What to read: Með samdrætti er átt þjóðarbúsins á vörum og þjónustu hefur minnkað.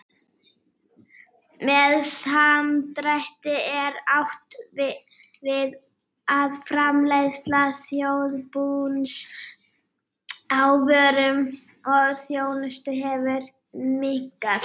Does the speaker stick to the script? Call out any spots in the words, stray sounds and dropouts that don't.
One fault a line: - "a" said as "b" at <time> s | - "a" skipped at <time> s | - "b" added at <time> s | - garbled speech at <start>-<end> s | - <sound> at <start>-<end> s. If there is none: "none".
- "við að framleiðsla" added at 4.8 s